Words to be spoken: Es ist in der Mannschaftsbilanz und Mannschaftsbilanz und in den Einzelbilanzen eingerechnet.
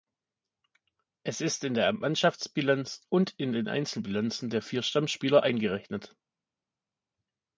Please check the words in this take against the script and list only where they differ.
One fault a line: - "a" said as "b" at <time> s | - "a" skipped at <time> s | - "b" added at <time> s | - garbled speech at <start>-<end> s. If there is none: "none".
- "Mannschaftsbilanz und" skipped at 3.4 s
- "der vier Stammspieler" added at 4.5 s